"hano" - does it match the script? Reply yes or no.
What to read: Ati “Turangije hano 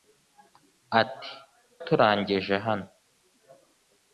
yes